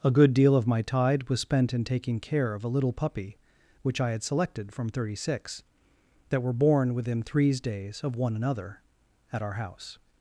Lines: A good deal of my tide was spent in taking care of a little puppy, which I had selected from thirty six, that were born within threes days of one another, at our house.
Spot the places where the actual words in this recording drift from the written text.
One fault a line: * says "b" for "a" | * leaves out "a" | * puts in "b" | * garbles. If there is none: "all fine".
all fine